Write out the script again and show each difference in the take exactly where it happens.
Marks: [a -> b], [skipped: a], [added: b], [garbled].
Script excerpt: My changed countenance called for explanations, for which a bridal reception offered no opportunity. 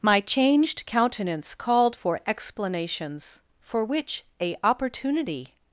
My changed countenance called for explanations, for which a [skipped: bridal reception offered no] opportunity.